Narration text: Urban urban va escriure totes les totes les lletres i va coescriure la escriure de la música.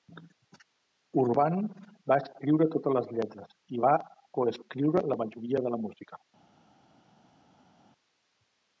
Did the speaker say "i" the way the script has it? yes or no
yes